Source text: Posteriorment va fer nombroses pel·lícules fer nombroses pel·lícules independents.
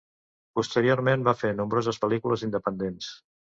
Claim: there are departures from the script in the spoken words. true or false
true